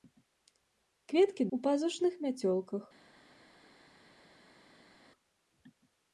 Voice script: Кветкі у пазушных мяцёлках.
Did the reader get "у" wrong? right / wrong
right